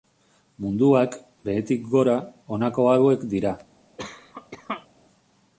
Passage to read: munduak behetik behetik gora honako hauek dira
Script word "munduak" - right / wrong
right